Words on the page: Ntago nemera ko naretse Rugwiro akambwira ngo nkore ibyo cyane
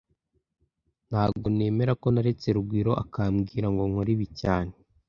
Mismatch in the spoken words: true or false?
true